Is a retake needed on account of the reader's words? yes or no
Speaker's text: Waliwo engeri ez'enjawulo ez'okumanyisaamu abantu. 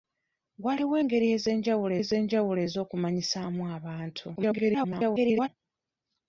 yes